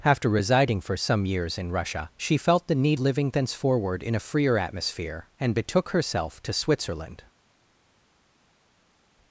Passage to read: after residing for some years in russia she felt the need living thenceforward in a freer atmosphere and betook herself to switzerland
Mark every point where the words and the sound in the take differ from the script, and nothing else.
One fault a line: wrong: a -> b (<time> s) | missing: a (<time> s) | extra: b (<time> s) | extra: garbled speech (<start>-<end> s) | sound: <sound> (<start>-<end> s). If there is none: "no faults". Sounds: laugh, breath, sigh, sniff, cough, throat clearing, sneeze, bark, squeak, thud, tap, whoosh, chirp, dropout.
no faults